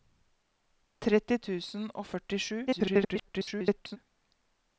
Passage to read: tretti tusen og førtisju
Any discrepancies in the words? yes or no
yes